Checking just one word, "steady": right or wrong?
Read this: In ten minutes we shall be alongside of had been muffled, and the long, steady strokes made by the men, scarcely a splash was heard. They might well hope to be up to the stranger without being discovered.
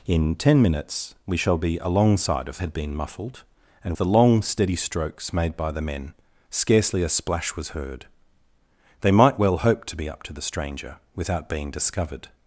right